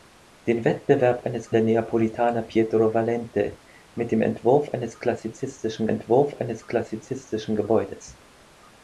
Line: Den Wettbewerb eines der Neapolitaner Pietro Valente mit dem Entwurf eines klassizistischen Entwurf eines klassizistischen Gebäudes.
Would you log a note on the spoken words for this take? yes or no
no